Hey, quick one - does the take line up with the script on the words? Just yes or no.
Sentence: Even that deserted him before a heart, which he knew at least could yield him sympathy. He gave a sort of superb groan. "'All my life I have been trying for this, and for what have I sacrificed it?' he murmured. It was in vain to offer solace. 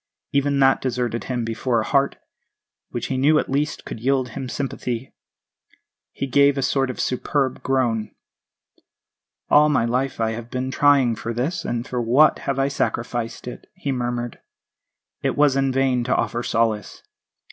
yes